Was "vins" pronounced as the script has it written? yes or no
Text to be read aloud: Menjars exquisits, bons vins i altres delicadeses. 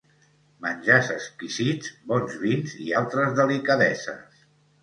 yes